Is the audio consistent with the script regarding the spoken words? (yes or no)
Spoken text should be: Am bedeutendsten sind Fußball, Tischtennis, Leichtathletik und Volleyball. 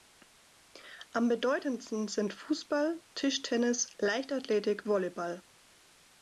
no